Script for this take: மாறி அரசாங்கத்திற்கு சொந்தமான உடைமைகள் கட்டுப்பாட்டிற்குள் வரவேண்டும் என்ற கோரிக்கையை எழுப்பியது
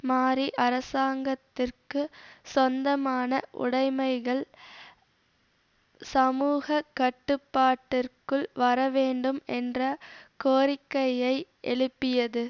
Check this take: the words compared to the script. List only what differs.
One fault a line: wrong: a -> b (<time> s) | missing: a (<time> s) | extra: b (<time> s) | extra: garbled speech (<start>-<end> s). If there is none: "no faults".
extra: சமூக (6.1 s)